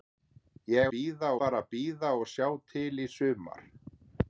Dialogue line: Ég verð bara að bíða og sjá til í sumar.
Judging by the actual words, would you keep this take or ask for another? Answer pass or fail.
fail